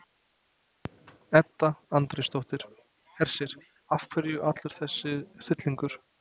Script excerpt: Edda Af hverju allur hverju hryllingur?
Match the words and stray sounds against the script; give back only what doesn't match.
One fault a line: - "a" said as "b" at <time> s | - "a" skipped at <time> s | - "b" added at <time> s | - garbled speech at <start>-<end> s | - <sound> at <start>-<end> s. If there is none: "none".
- "Andrésdóttir Hersir" added at 2.0 s
- "hverju" said as "þessi" at 4.8 s